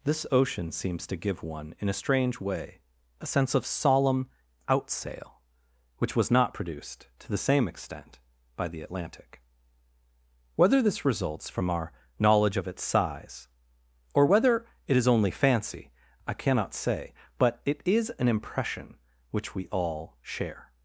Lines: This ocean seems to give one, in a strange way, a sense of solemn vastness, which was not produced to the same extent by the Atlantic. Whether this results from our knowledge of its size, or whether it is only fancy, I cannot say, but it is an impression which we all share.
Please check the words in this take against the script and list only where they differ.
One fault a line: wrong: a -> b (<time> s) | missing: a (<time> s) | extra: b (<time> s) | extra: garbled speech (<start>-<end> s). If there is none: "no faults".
wrong: vastness -> outsail (4.7 s)